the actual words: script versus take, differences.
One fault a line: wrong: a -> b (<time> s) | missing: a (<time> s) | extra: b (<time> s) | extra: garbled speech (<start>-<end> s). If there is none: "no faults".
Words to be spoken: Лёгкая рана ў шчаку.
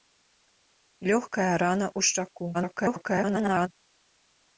extra: garbled speech (2.5-3.7 s)